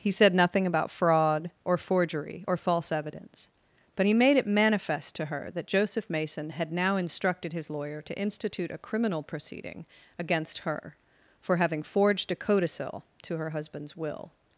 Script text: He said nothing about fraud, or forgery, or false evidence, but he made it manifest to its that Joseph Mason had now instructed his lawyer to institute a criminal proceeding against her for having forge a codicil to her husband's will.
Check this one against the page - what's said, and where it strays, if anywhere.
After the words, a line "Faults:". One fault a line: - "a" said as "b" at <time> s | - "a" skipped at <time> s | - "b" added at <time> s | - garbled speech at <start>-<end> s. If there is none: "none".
He said nothing about fraud, or forgery, or false evidence, but he made it manifest to her that Joseph Mason had now instructed his lawyer to institute a criminal proceeding against her for having forged a codicil to her husband's will.
Faults:
- "its" said as "her" at 5.2 s
- "forge" said as "forged" at 11.8 s